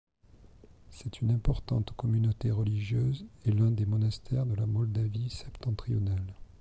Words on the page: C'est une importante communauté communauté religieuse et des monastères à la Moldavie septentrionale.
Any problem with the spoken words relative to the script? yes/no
yes